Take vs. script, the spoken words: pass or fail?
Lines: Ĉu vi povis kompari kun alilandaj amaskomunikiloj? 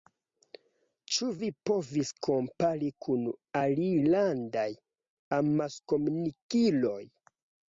pass